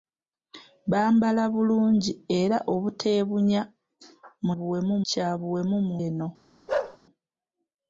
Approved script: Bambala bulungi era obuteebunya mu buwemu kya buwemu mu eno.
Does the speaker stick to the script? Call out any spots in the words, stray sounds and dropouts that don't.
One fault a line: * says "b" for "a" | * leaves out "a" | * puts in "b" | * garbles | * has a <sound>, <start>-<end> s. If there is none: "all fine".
* has a bark, 6.7-7.0 s